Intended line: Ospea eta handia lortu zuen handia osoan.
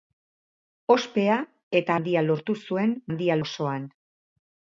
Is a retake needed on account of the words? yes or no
no